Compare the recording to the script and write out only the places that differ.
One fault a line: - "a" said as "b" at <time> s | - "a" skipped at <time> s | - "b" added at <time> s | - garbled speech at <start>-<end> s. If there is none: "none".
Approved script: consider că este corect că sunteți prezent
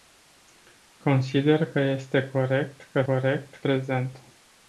- "sunteți" said as "corect" at 3.0 s